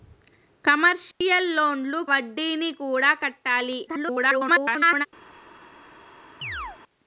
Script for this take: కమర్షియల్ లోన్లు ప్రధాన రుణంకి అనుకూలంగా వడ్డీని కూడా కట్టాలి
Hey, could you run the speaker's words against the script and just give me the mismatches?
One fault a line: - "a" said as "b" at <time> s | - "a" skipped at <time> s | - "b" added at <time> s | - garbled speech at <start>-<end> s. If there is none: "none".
- "ప్రధాన రుణంకి అనుకూలంగా" skipped at 2.0 s
- garbled speech at 3.9-5.1 s